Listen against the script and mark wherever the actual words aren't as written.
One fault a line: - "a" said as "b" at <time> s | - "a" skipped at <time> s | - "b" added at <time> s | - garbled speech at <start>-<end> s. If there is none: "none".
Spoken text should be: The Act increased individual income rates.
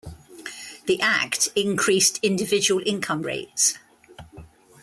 none